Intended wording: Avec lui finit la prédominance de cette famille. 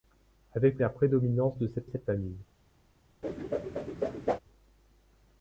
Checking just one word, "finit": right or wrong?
wrong